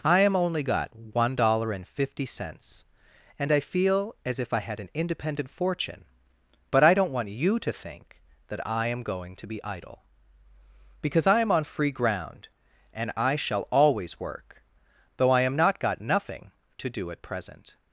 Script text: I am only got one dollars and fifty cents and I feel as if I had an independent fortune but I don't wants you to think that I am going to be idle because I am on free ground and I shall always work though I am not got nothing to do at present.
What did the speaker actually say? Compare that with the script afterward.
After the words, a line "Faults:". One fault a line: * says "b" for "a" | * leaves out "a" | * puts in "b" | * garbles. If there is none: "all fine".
I am only got one dollar and fifty cents and I feel as if I had an independent fortune but I don't want you to think that I am going to be idle because I am on free ground and I shall always work though I am not got nothing to do at present.
Faults:
* says "dollar" for "dollars"
* says "want" for "wants"